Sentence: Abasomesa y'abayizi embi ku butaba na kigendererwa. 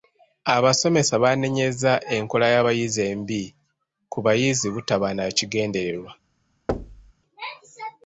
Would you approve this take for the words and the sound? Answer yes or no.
no